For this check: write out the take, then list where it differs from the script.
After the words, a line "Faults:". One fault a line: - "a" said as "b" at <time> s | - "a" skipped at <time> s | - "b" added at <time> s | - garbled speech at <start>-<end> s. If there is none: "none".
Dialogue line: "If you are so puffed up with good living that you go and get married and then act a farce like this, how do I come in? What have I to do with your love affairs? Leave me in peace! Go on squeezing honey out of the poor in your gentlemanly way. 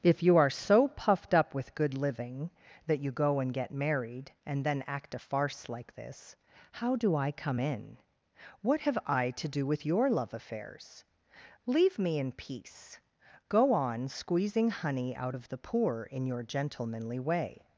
"If you are so puffed up with good living that you go and get married and then act a farce like this, how do I come in? What have I to do with your love affairs? Leave me in peace! Go on squeezing honey out of the poor in your gentlemanly way.
Faults:
none